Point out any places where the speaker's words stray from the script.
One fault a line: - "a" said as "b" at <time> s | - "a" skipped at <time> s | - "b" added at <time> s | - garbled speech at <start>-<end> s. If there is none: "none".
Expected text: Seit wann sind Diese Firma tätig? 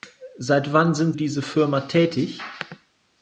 none